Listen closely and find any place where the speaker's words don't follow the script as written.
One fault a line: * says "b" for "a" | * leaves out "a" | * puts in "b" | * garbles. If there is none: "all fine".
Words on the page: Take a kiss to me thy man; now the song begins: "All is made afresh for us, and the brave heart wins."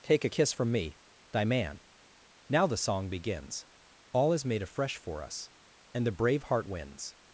* says "from" for "to"